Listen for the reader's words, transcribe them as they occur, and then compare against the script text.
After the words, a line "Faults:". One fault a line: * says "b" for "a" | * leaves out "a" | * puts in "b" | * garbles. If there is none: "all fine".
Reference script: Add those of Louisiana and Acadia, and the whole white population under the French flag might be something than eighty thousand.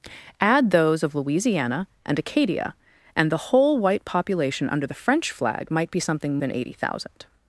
Add those of Louisiana and Acadia, and the whole white population under the French flag might be something than eighty thousand.
Faults:
all fine